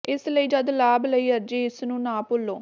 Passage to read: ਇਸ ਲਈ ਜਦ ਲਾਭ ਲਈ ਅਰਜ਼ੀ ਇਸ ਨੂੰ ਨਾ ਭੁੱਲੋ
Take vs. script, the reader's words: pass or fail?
pass